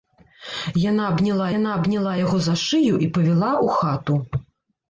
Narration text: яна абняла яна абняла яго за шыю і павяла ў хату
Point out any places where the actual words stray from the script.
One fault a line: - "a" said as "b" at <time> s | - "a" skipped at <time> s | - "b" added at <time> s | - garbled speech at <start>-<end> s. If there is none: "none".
none